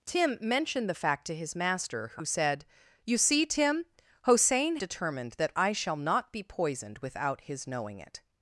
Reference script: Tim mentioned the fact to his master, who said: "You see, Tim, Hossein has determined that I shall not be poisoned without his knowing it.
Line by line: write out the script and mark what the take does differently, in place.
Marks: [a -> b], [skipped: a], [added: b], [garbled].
Tim mentioned the fact to his master, who said: "You see, Tim, Hossein [skipped: has] determined that I shall not be poisoned without his knowing it.